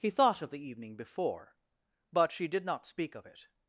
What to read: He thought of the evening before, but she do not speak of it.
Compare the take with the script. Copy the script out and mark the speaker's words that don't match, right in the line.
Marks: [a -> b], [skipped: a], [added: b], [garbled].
He thought of the evening before, but she [do -> did] not speak of it.